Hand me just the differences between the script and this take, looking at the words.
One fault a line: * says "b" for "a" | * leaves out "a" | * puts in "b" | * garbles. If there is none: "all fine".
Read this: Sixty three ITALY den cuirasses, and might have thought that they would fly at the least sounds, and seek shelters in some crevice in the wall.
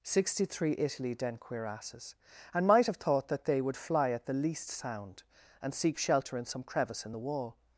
* says "sound" for "sounds"
* says "shelter" for "shelters"